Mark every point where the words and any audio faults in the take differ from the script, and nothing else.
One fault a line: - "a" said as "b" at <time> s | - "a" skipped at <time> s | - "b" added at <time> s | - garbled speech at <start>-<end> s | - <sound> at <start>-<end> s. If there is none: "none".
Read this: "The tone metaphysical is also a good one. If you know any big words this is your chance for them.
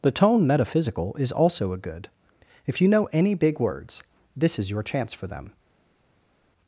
- "one" skipped at 2.1 s